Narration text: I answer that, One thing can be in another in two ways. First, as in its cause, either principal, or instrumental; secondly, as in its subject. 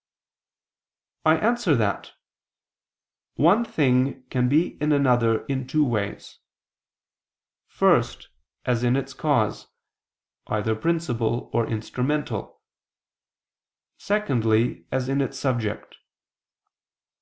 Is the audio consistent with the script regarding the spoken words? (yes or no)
yes